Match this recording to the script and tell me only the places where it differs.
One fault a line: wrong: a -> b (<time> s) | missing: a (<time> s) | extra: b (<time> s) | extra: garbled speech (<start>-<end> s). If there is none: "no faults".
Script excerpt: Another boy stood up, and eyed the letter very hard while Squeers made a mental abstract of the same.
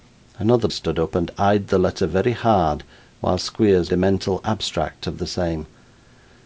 missing: boy (0.7 s)
missing: made (3.9 s)